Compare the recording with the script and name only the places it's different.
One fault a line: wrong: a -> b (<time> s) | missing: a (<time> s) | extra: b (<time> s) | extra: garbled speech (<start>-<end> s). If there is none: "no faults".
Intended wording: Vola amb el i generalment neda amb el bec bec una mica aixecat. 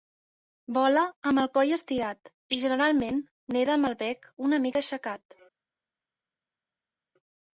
extra: coll estirat (1.6 s)
missing: bec (4.3 s)